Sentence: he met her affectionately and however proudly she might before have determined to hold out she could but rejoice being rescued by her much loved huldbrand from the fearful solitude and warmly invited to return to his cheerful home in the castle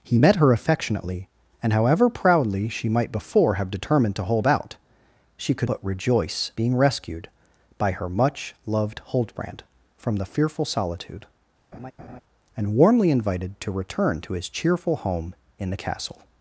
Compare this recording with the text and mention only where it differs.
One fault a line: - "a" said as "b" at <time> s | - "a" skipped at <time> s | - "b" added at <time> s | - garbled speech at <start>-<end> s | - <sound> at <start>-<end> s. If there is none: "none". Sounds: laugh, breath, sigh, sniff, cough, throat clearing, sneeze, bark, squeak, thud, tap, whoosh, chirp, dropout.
- laugh at 11.7-12.2 s